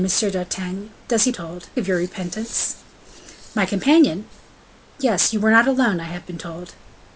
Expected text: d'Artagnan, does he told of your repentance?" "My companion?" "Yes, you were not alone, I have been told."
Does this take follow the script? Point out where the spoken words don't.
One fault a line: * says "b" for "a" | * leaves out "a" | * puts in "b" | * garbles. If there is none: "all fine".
all fine